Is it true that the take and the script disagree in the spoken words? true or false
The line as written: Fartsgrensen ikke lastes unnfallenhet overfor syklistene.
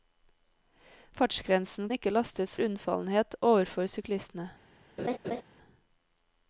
false